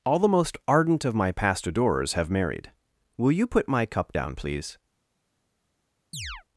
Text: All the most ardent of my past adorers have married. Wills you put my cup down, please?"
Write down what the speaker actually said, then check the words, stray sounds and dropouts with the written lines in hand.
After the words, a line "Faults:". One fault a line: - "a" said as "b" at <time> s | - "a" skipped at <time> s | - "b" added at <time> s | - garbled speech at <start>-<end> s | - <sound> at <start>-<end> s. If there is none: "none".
All the most ardent of my past adorers have married. Will you put my cup down, please?"
Faults:
- "Wills" said as "Will" at 3.2 s
- chirp at 6.1-6.4 s